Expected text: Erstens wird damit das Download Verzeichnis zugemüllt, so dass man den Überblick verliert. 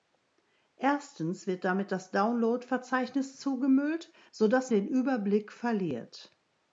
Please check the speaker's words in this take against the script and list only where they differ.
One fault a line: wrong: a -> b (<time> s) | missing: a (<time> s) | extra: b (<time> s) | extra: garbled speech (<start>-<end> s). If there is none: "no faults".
missing: man (4.7 s)